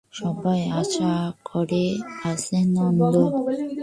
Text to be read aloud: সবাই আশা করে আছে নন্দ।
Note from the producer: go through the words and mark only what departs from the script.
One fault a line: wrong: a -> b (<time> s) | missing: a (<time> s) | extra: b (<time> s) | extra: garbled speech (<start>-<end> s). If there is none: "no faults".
no faults